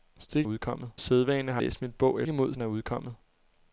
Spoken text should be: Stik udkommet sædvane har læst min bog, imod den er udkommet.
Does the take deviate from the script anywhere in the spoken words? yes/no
no